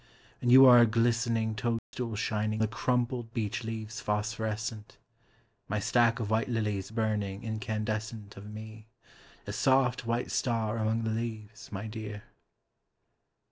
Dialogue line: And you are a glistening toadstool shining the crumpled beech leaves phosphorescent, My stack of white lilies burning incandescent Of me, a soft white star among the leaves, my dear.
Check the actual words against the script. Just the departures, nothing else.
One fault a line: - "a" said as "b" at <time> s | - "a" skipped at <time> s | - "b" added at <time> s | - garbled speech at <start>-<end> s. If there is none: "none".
none